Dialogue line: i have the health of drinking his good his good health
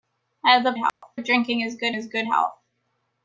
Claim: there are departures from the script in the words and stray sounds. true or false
true